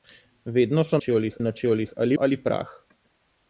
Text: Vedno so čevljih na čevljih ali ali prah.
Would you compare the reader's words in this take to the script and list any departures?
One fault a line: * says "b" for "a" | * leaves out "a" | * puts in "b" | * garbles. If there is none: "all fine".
all fine